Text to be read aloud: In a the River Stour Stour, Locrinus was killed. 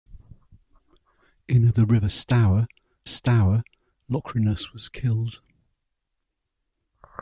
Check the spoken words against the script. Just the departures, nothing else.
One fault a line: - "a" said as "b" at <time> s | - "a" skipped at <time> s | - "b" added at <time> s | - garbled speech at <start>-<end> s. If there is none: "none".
none